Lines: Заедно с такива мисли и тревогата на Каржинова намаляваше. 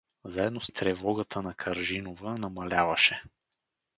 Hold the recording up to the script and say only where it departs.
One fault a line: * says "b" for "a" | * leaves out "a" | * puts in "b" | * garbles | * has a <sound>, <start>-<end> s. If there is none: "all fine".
* leaves out "такива мисли"